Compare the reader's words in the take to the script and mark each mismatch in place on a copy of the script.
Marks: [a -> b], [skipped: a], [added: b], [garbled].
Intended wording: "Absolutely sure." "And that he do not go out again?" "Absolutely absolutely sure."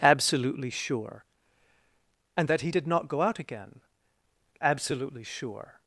"Absolutely sure." "And that he [do -> did] not go out again?" "Absolutely [skipped: absolutely] sure."